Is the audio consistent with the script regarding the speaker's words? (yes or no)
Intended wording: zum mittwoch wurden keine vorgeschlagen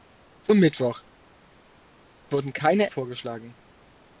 yes